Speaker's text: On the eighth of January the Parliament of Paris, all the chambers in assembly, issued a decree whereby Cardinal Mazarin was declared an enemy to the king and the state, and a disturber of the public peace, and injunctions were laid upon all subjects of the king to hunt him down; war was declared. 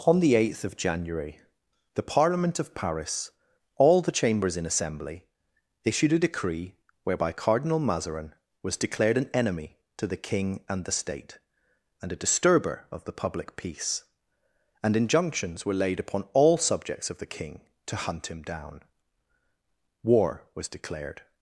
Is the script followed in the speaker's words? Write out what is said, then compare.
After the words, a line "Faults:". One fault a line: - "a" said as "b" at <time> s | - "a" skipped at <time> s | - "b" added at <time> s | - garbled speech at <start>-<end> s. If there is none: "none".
On the eighth of January the Parliament of Paris, all the chambers in assembly, issued a decree whereby Cardinal Mazarin was declared an enemy to the king and the state, and a disturber of the public peace, and injunctions were laid upon all subjects of the king to hunt him down; war was declared.
Faults:
none